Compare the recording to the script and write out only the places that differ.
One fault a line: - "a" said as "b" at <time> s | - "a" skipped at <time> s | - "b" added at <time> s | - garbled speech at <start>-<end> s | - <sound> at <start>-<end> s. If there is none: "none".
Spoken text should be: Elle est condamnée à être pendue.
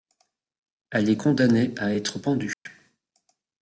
- dropout at 2.5-2.7 s